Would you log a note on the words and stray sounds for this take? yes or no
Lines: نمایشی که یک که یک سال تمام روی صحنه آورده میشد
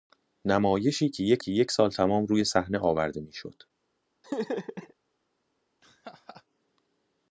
yes